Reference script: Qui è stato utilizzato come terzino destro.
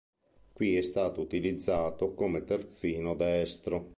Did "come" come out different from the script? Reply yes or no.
no